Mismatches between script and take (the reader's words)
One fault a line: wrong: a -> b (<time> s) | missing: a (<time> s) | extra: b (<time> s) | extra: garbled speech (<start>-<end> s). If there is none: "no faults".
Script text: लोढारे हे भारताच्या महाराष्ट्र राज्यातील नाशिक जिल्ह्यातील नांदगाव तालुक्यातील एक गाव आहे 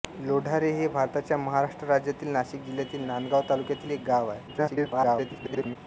extra: garbled speech (4.5-5.8 s)